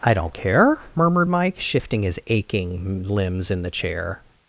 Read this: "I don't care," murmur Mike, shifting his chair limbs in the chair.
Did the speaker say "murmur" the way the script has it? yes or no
no